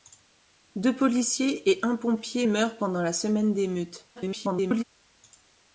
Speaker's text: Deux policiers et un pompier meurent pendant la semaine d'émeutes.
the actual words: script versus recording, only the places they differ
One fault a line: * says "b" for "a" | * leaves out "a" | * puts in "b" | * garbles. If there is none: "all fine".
* garbles